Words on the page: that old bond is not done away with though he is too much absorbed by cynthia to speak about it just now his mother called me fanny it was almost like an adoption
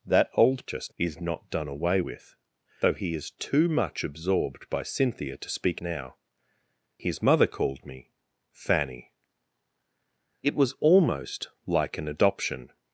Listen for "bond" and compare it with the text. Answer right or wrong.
wrong